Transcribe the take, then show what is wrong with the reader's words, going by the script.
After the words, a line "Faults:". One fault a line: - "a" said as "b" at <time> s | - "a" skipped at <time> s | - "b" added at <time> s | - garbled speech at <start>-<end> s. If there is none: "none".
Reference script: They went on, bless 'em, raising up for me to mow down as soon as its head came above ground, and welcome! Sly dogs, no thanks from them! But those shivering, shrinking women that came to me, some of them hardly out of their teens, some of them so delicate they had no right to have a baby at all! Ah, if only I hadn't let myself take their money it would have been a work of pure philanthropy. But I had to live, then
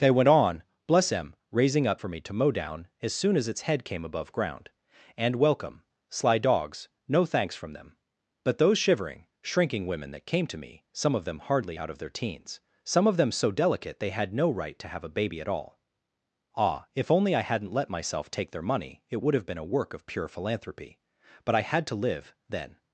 They went on, bless 'em, raising up for me to mow down as soon as its head came above ground, and welcome! Sly dogs, no thanks from them! But those shivering, shrinking women that came to me, some of them hardly out of their teens, some of them so delicate they had no right to have a baby at all! Ah, if only I hadn't let myself take their money it would have been a work of pure philanthropy. But I had to live, then
Faults:
none